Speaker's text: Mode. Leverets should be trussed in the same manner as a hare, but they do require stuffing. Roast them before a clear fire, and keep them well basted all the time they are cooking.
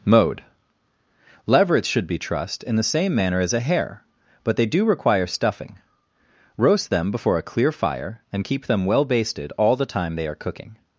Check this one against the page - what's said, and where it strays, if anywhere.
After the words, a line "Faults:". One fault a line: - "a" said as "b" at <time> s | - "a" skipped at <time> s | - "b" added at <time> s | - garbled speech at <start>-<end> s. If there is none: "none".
Mode. Leverets should be trussed in the same manner as a hare, but they do require stuffing. Roast them before a clear fire, and keep them well basted all the time they are cooking.
Faults:
none